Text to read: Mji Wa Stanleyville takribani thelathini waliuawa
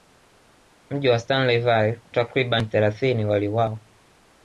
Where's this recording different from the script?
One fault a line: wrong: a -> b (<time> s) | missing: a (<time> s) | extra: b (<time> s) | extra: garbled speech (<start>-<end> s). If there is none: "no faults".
no faults